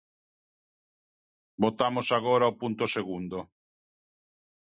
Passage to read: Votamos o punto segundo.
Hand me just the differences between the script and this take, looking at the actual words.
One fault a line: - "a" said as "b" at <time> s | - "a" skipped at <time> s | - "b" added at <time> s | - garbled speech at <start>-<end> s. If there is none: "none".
- "agora" added at 2.2 s